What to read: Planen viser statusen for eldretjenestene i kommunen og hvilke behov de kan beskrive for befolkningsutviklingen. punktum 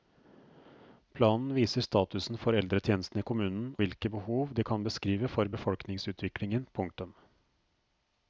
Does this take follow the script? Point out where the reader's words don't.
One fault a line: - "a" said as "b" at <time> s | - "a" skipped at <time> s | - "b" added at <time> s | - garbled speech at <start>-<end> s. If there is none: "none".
- "og" skipped at 3.7 s